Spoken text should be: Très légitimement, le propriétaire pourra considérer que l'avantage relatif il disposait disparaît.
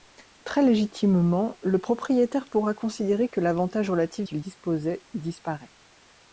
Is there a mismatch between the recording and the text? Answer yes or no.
no